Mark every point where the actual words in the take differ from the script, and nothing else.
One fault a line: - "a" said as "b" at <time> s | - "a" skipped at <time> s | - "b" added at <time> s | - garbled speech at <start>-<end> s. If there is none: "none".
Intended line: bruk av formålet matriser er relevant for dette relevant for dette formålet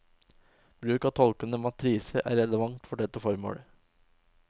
- "formålet" said as "tolkende" at 1.2 s
- "relevant for dette" skipped at 3.2 s